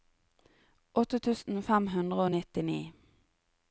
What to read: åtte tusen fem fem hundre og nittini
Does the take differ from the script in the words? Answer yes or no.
yes